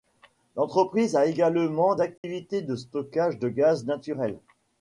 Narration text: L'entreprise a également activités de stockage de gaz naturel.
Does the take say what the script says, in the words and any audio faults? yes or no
no